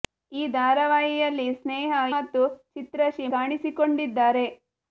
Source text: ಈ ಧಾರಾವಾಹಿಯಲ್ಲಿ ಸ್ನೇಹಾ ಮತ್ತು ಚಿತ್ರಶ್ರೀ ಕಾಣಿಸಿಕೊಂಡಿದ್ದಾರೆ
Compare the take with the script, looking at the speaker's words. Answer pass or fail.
pass